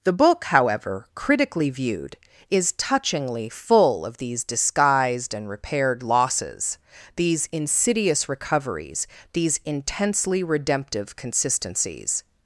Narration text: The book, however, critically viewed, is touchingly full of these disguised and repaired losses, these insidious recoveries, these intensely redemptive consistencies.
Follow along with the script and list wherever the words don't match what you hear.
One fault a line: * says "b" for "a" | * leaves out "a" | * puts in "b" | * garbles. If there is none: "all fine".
all fine